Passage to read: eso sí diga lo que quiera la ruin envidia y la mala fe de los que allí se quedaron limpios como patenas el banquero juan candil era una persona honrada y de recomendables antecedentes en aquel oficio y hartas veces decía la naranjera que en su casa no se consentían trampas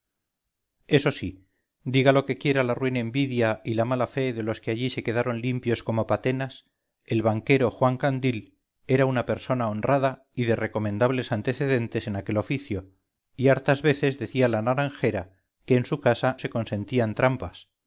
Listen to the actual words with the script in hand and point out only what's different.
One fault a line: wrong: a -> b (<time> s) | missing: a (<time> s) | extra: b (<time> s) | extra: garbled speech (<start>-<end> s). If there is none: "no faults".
missing: no (16.4 s)